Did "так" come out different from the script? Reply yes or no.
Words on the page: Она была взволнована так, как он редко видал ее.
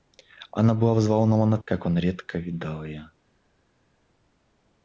yes